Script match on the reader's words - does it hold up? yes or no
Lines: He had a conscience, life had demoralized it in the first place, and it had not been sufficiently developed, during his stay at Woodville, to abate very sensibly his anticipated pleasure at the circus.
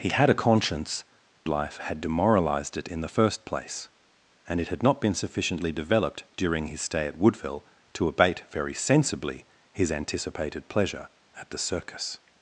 yes